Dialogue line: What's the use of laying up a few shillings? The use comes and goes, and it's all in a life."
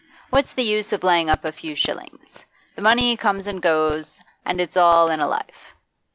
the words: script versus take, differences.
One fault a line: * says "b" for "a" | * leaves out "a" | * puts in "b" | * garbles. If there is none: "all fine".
* says "money" for "use"